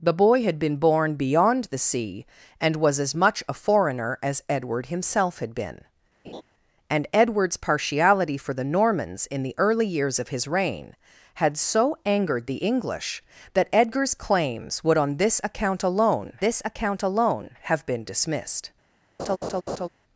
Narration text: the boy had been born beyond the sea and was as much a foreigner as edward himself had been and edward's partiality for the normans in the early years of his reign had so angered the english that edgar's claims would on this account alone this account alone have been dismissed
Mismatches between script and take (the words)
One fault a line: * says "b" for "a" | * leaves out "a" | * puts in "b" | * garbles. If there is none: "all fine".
all fine